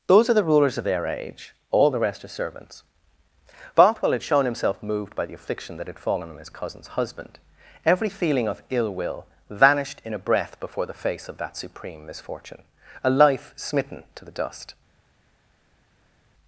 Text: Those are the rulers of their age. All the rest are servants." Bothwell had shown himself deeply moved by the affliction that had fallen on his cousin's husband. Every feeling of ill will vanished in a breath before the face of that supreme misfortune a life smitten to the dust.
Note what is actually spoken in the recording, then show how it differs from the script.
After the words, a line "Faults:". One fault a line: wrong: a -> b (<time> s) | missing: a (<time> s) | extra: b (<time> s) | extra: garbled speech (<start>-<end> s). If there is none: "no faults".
Those are the rulers of their age. All the rest are servants." Bothwell had shown himself moved by the affliction that had fallen on his cousin's husband. Every feeling of ill will vanished in a breath before the face of that supreme misfortune a life smitten to the dust.
Faults:
missing: deeply (4.8 s)